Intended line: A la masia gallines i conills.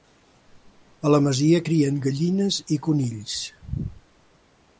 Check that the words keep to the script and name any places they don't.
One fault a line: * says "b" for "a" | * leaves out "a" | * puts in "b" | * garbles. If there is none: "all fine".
* puts in "crien"